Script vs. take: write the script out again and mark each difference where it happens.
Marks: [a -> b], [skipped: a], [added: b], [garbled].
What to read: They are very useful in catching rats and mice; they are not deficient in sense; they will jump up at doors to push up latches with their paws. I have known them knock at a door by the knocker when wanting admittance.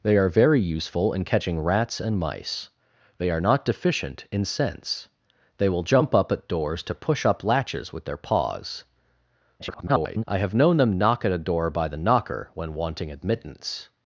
They are very useful in catching rats and mice; they are not deficient in sense; they will jump up at doors to push up latches with their paws. [garbled] I have known them knock at a door by the knocker when wanting admittance.